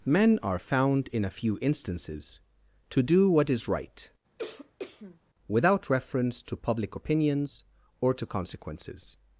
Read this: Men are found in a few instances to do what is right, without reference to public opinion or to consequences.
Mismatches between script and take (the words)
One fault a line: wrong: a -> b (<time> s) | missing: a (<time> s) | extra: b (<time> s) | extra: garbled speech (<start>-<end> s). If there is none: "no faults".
wrong: opinion -> opinions (7.0 s)